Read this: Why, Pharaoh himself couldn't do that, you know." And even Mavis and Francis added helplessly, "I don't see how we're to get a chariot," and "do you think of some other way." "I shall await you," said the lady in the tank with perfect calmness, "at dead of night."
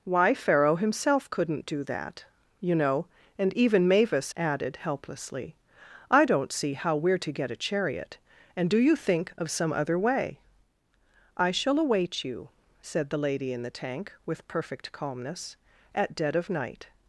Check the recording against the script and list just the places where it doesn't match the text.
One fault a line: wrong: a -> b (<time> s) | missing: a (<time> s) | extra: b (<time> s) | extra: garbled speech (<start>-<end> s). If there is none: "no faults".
missing: and Francis (4.3 s)